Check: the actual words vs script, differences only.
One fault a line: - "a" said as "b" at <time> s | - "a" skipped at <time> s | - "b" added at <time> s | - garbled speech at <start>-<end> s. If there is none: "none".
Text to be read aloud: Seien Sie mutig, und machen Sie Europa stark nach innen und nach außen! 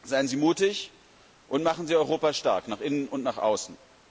none